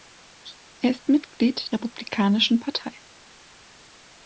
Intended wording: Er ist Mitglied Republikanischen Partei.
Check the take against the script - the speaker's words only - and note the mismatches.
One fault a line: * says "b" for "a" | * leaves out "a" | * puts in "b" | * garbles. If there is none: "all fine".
all fine